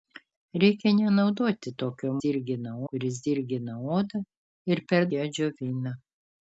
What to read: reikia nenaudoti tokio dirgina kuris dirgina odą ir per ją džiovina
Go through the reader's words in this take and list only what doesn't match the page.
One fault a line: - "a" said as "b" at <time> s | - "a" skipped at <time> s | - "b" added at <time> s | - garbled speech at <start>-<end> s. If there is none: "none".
none